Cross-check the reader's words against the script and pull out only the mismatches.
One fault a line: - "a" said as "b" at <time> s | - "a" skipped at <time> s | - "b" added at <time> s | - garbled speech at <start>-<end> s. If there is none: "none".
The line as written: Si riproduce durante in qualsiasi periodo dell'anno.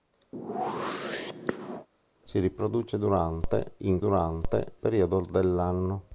- "qualsiasi" said as "durante" at 4.0 s